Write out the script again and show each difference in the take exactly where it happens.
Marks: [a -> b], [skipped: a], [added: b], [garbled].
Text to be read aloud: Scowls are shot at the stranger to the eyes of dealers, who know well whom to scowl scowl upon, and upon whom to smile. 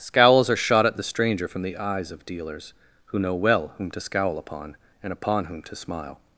Scowls are shot at the stranger [to -> from] the eyes of dealers, who know well whom to scowl [skipped: scowl] upon, and upon whom to smile.